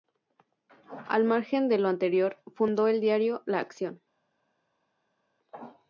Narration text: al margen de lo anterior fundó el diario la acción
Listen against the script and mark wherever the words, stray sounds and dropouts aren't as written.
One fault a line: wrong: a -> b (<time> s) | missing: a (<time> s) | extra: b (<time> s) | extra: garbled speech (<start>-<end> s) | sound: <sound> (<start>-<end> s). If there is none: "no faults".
no faults